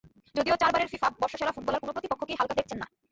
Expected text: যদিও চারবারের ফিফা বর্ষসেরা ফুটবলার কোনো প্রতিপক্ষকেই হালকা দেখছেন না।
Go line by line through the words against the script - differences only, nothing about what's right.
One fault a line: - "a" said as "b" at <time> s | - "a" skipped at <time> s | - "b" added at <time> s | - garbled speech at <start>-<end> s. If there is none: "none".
none